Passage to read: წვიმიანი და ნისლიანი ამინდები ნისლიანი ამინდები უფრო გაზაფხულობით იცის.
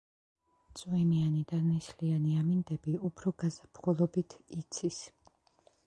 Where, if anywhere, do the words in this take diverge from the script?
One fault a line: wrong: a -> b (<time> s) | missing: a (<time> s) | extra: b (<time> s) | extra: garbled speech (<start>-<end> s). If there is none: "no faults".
missing: ნისლიანი ამინდები (3.0 s)